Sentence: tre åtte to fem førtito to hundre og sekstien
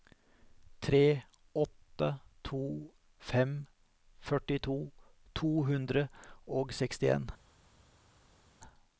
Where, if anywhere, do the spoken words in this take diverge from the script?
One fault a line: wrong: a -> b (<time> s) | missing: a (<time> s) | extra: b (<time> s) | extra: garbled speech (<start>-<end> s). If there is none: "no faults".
no faults